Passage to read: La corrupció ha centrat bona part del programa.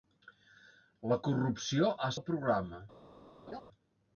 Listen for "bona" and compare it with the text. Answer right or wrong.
wrong